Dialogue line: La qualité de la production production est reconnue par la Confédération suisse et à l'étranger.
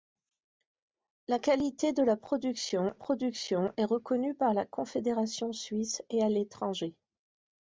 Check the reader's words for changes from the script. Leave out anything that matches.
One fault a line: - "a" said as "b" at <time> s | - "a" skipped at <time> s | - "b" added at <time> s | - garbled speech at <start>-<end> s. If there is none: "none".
none